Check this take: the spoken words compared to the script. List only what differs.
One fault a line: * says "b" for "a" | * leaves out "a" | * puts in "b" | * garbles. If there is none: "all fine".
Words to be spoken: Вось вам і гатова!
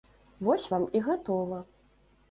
all fine